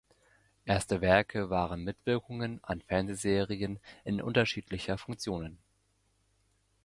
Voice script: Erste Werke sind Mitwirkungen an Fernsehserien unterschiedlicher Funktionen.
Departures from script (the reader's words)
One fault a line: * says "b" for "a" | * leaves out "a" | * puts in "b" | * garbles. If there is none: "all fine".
* says "waren" for "sind"
* puts in "in"